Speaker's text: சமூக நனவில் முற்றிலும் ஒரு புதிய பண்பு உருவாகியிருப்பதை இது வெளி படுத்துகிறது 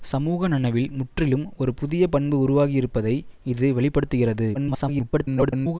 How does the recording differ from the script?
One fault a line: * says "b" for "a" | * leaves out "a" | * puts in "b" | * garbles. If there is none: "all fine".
* garbles